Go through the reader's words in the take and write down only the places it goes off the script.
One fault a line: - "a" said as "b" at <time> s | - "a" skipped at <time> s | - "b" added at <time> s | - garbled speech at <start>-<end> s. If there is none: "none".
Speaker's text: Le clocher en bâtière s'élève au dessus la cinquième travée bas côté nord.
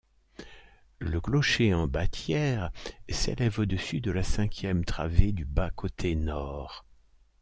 - "de" added at 4.0 s
- "du" added at 5.3 s